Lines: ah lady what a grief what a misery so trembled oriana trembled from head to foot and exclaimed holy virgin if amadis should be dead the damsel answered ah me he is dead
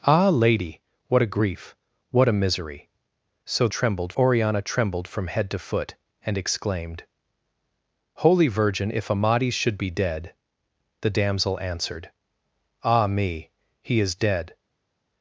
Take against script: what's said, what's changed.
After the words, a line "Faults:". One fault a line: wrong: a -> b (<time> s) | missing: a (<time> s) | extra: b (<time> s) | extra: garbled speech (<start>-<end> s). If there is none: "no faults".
ah lady what a grief what a misery so trembled oriana trembled from head to foot and exclaimed holy virgin if amadis should be dead the damsel answered ah me he is dead
Faults:
no faults